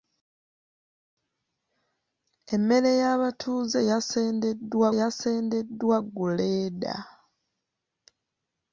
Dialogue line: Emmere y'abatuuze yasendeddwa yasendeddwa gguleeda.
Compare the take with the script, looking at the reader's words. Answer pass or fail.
pass